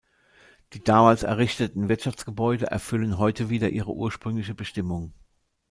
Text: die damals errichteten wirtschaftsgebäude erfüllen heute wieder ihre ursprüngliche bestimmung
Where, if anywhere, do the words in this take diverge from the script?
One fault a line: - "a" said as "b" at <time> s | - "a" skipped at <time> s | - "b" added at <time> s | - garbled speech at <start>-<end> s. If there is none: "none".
none